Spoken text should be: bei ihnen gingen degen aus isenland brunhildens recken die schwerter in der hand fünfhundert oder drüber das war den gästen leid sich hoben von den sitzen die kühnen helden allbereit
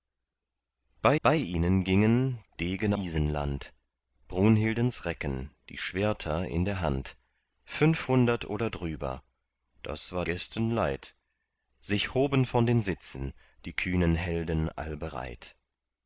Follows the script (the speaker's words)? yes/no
no